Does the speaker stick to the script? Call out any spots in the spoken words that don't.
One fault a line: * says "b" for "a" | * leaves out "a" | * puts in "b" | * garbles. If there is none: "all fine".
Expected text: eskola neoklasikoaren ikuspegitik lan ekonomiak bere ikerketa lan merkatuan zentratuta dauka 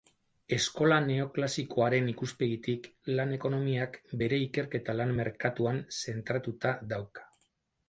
all fine